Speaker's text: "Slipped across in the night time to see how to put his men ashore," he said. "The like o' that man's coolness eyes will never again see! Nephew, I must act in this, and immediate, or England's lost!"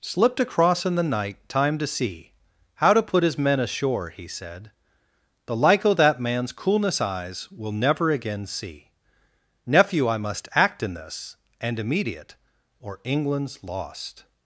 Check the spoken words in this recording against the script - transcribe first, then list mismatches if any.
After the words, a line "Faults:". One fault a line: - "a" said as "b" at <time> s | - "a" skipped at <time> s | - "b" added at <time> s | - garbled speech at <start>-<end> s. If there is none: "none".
"Slipped across in the night time to see how to put his men ashore," he said. "The like o' that man's coolness eyes will never again see! Nephew, I must act in this, and immediate, or England's lost!"
Faults:
none